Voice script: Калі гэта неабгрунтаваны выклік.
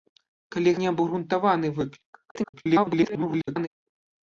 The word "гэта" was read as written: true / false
false